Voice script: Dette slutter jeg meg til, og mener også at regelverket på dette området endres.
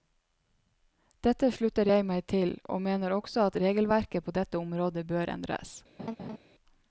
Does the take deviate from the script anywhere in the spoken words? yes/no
yes